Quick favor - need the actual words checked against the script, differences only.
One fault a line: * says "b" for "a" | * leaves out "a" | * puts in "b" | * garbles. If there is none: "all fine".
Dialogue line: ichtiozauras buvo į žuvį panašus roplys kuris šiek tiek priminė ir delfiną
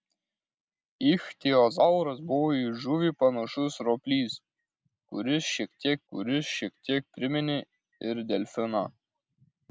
* puts in "kuris šiek tiek"